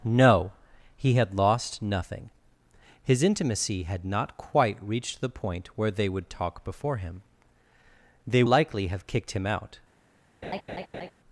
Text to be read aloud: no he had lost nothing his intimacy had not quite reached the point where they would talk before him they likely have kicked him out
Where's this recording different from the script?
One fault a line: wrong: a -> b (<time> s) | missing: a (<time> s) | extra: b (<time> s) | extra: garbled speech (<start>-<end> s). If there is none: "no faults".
no faults